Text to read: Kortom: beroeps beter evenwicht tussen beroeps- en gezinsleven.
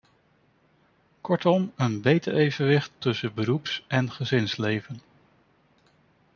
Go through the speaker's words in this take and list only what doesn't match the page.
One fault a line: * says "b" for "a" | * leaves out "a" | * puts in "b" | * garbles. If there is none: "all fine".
* says "een" for "beroeps"